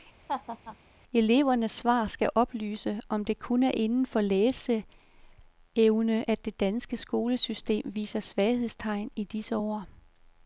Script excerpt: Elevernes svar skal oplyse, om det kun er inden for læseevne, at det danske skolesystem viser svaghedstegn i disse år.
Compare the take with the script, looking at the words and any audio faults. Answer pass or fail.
fail